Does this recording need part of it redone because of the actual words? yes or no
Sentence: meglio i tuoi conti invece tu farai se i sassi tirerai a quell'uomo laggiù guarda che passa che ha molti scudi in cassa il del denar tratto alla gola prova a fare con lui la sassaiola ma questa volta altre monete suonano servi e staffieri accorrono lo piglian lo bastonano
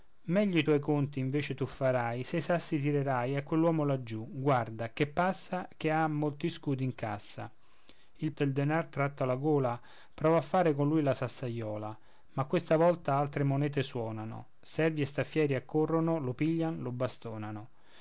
no